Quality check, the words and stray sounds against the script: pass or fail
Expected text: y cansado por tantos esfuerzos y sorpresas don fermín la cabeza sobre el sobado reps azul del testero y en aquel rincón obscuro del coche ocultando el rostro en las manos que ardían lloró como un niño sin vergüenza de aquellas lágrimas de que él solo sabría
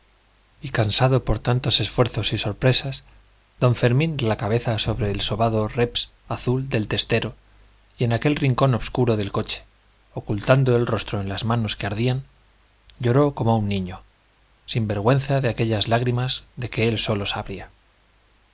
pass